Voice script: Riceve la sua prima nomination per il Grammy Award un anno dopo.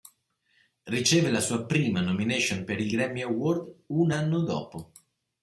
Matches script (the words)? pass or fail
pass